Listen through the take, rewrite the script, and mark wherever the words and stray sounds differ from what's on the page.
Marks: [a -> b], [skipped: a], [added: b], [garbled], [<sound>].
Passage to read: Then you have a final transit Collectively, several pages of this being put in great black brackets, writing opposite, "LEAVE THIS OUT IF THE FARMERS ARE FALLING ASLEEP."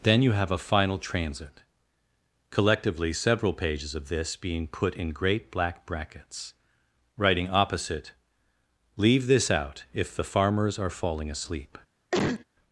Then you have a final transit Collectively, several pages of this being put in great black brackets, writing opposite, "LEAVE THIS OUT IF THE FARMERS ARE FALLING ASLEEP." [cough]